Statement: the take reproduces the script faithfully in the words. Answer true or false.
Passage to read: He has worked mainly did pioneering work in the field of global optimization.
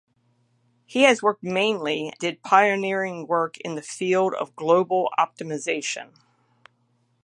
true